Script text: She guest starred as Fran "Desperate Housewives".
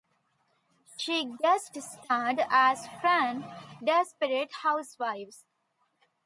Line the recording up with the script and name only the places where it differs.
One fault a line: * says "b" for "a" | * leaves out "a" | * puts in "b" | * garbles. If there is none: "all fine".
all fine